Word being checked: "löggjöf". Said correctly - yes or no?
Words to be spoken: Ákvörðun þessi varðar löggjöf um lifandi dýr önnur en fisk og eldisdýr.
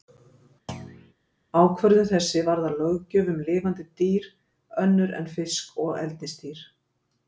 yes